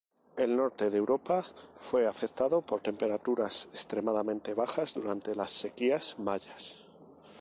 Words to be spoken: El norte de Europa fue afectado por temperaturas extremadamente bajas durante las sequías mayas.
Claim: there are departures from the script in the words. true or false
false